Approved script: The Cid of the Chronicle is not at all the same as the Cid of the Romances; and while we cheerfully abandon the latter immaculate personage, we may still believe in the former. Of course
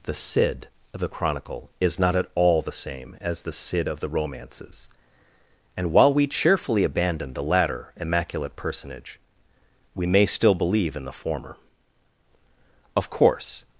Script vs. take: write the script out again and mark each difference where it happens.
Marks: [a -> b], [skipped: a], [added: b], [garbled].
The Cid of the Chronicle is not at all the same as the Cid of the Romances; and while we cheerfully abandon the latter immaculate personage, we may still believe in the former. Of course